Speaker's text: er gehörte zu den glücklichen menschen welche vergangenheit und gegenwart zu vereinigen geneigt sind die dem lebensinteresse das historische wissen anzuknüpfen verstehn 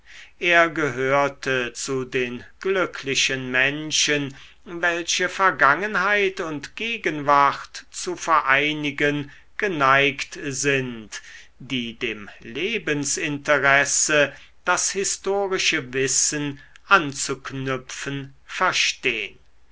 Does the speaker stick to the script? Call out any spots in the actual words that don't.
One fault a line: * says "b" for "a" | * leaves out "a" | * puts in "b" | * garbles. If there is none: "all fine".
all fine